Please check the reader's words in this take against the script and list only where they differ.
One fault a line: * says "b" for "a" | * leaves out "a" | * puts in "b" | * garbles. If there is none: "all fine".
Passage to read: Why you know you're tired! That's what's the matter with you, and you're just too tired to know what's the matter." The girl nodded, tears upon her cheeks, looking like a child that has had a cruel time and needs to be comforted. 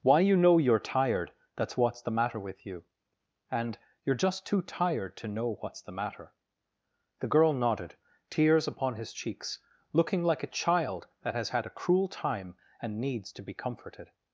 * says "his" for "her"